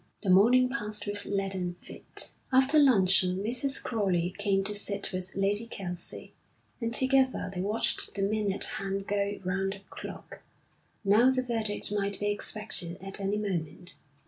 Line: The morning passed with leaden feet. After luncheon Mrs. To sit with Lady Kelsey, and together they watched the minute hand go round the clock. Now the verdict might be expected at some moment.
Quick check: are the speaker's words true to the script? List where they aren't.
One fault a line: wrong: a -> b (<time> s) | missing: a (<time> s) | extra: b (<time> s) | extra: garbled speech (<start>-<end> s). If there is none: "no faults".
extra: Crowley came (3.8 s)
wrong: some -> any (13.2 s)